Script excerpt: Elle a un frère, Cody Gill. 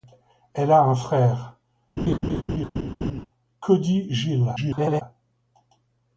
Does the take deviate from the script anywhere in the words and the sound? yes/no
yes